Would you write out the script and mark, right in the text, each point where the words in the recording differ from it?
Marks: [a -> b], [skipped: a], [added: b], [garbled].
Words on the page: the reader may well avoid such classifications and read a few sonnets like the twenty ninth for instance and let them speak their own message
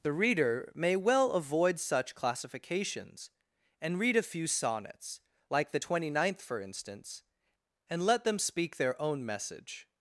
the reader may well avoid such classifications and read a few sonnets like the twenty ninth for instance and let them speak their own message